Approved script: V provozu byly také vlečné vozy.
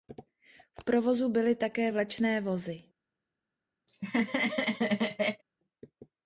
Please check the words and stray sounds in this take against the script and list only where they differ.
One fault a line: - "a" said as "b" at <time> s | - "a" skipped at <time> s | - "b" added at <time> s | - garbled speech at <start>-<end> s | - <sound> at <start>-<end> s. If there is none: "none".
- laugh at 3.9-5.4 s